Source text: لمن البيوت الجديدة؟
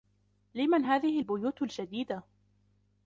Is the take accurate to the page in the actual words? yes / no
no